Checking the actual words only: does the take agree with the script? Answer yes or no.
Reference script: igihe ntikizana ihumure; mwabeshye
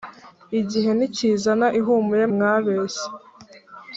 yes